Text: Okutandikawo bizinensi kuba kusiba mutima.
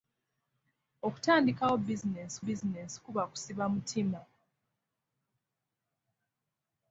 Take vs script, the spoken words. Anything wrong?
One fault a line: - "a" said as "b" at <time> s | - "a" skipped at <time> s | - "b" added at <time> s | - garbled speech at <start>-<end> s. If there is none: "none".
- "bizinensi" added at 2.4 s